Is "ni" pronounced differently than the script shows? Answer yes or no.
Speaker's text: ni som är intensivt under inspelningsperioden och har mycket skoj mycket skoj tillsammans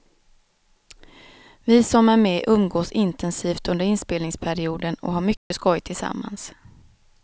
yes